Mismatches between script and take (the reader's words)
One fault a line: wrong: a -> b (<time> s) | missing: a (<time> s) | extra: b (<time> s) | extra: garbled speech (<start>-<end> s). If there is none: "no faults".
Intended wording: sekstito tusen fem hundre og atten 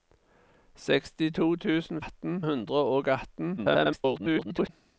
wrong: fem -> atten (2.0 s)
extra: garbled speech (3.6-4.7 s)